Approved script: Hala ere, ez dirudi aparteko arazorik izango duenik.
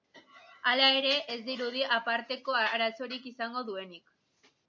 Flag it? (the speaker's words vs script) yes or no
no